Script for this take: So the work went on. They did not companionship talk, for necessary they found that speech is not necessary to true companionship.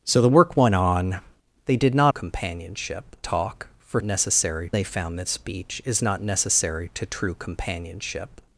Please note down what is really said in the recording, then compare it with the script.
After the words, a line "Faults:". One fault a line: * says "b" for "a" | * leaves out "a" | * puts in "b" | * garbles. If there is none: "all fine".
So the work went on. They did not companionship talk, for necessary they found that speech is not necessary to true companionship.
Faults:
all fine